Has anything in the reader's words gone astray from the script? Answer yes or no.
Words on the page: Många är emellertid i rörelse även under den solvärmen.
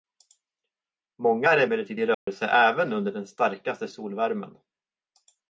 yes